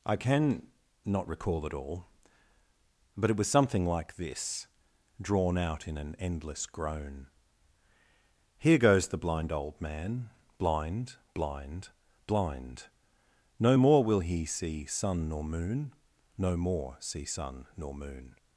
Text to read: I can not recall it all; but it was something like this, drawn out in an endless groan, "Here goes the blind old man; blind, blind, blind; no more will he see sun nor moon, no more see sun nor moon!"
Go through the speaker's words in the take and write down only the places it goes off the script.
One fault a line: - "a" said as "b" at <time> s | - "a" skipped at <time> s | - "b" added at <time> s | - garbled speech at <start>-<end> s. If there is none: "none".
none